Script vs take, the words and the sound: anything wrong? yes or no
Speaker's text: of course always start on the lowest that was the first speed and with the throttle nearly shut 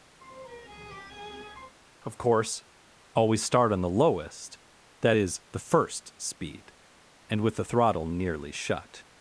yes